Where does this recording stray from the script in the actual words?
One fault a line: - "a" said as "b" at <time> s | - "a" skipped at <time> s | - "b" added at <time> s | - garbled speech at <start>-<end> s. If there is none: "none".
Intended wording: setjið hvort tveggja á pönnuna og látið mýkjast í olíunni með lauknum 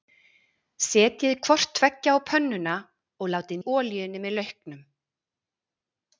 - "mýkjast" skipped at 3.6 s